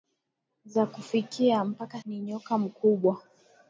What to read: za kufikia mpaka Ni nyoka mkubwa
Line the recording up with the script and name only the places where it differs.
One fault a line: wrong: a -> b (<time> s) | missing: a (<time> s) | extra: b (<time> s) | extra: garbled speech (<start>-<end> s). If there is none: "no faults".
no faults